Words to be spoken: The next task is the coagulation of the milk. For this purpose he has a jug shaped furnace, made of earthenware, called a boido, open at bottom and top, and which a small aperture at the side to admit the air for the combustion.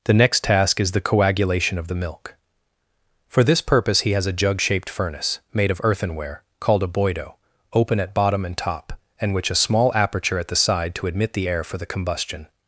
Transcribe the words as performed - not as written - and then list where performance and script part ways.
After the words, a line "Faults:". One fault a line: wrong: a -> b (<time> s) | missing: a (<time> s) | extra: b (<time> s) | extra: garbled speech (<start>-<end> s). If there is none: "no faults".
The next task is the coagulation of the milk. For this purpose he has a jug shaped furnace, made of earthenware, called a boido, open at bottom and top, and which a small aperture at the side to admit the air for the combustion.
Faults:
no faults